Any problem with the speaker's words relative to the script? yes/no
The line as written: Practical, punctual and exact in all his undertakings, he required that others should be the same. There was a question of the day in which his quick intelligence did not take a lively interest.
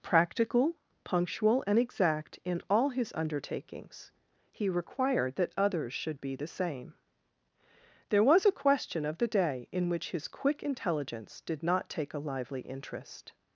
no